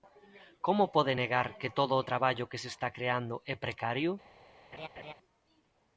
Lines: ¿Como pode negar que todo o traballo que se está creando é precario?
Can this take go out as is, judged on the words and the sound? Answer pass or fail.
fail